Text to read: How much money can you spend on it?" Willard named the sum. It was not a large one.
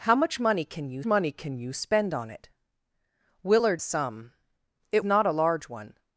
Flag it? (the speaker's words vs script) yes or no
yes